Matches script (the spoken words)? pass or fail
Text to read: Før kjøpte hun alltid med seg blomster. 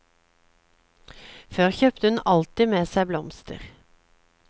pass